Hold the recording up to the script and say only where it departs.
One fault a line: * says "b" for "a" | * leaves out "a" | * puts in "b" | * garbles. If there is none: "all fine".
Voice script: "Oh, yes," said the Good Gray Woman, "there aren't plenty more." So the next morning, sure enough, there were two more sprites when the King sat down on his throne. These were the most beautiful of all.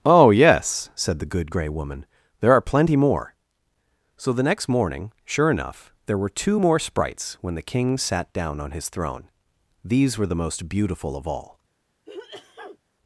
* says "are" for "aren't"